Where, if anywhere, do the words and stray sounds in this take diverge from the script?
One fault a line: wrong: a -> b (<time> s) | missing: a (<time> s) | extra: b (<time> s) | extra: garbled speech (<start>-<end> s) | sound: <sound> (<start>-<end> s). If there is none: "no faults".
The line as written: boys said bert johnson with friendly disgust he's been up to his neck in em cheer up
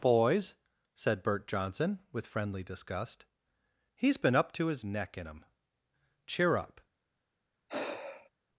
sound: sigh (7.7-8.3 s)